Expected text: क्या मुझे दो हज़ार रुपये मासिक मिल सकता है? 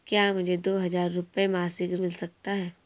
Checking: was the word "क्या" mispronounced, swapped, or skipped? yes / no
no